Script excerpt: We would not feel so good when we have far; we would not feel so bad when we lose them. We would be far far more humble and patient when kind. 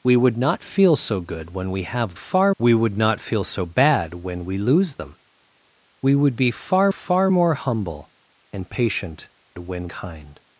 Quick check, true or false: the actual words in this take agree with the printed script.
true